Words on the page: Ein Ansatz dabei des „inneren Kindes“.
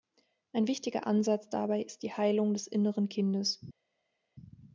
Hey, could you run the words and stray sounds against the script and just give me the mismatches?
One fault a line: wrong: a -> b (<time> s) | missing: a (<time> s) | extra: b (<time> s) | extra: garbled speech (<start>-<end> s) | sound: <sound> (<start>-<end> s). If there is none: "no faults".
extra: wichtiger (0.7 s)
extra: ist die Heilung (1.8 s)